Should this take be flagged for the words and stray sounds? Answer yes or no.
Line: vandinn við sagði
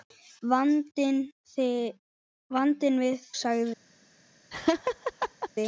yes